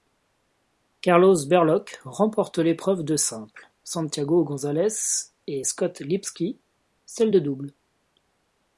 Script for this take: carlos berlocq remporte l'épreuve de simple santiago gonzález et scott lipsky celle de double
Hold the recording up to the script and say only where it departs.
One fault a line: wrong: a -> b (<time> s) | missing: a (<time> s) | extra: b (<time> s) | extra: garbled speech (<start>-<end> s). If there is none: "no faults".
no faults